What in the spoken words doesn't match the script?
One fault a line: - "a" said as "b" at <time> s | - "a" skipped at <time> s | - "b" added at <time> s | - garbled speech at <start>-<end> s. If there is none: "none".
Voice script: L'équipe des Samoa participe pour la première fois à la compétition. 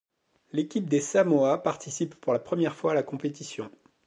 none